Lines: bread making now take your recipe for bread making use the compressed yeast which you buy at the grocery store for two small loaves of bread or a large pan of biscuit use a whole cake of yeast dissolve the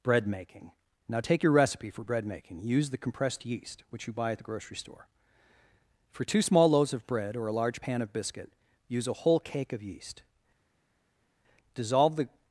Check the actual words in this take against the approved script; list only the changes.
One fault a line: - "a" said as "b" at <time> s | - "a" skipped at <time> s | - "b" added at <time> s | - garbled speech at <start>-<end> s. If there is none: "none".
none